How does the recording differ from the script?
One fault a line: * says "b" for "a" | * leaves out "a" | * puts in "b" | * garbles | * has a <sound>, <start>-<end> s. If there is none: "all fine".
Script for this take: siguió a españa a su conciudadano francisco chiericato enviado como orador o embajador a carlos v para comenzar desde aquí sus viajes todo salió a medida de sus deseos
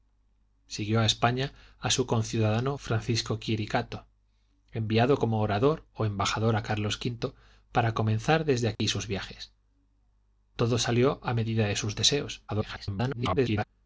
* has a dropout, 8.8-8.8 s
* garbles